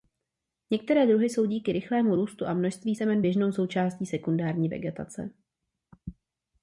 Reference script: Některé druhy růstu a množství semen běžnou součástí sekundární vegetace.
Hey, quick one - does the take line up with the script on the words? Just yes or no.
no